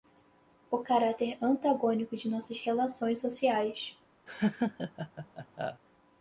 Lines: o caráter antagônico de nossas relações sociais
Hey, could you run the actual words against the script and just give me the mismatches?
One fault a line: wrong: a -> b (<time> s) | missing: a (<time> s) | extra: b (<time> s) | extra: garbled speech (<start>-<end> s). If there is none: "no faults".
no faults